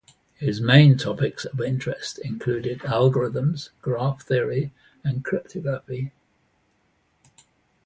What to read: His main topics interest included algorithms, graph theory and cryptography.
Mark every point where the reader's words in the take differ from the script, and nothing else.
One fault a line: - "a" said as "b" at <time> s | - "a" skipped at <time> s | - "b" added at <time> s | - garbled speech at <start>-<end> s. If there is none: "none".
- "of" added at 1.4 s